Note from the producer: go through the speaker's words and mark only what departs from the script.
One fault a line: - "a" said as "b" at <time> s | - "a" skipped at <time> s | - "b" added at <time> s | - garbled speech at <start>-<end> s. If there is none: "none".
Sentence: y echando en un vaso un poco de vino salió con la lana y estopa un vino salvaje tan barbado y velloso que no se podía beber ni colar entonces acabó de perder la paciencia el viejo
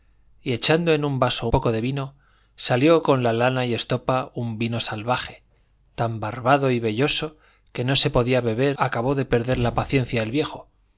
- "un" skipped at 1.5 s
- "ni colar entonces" skipped at 8.8 s